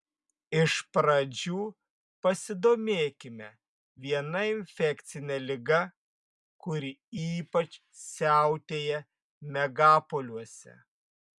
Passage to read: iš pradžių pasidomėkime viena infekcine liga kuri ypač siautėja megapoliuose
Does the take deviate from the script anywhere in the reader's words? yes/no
no